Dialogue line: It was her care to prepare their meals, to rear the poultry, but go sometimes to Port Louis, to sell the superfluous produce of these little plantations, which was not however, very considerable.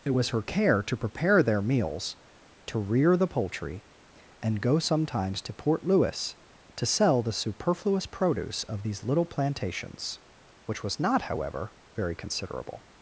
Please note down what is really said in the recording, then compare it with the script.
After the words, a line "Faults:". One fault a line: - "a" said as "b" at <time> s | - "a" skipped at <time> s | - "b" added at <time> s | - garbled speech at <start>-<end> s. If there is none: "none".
It was her care to prepare their meals, to rear the poultry, and go sometimes to Port Louis, to sell the superfluous produce of these little plantations, which was not however, very considerable.
Faults:
- "but" said as "and" at 4.4 s